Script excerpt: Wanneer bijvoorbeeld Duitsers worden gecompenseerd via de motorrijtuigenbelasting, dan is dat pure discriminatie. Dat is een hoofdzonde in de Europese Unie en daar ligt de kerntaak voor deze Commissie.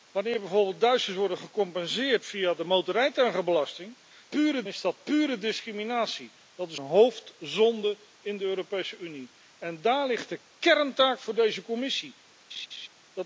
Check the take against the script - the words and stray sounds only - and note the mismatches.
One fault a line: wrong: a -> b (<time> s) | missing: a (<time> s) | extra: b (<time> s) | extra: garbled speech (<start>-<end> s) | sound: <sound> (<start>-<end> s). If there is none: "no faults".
wrong: dan -> pure (4.3 s)
missing: een (6.8 s)
sound: laugh (12.5-12.9 s)